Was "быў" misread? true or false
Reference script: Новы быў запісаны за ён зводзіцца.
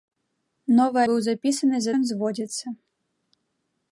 false